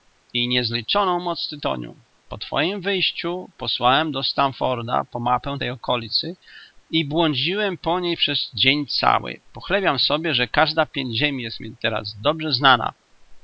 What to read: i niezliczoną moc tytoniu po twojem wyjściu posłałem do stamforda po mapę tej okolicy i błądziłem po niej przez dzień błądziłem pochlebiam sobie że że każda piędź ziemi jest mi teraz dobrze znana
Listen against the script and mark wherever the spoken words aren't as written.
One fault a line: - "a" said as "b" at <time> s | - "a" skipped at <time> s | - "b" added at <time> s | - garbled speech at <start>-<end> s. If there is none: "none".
- "błądziłem" said as "cały" at 8.9 s
- "że" skipped at 10.5 s